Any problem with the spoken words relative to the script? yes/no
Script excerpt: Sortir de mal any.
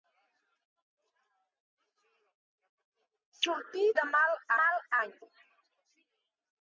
yes